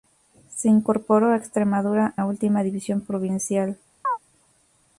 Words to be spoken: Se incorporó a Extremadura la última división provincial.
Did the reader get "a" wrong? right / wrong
right